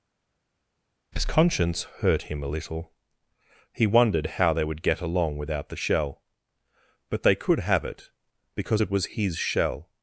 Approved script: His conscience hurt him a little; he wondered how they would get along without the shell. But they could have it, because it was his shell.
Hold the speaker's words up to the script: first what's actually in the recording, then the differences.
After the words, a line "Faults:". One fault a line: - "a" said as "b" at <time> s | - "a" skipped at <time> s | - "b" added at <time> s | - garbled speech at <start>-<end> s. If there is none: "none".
His conscience hurt him a little; he wondered how they would get along without the shell. But they could have it, because it was his shell.
Faults:
none